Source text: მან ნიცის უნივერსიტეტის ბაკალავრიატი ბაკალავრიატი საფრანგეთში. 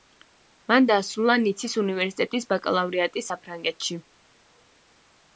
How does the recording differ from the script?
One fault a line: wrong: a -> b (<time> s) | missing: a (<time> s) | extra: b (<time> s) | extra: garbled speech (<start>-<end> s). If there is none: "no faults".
extra: დაასრულა (0.9 s)
missing: ბაკალავრიატი (3.2 s)